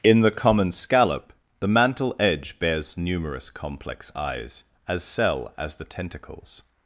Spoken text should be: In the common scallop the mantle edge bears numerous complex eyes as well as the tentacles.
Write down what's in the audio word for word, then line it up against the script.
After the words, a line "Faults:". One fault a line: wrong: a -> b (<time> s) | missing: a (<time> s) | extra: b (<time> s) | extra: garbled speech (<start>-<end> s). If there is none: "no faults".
In the common scallop the mantle edge bears numerous complex eyes as cell as the tentacles.
Faults:
wrong: well -> cell (5.0 s)